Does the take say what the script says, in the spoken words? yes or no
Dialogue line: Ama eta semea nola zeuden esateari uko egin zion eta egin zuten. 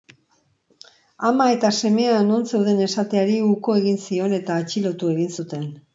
no